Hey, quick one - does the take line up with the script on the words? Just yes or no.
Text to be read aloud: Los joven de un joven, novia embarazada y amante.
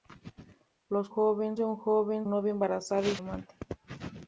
yes